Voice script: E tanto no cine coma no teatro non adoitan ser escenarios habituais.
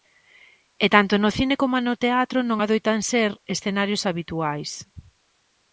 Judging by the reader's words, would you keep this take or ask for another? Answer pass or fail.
pass